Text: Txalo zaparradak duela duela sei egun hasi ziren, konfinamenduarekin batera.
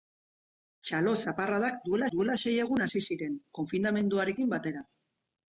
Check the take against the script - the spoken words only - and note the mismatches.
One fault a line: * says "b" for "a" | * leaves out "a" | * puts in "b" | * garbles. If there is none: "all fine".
all fine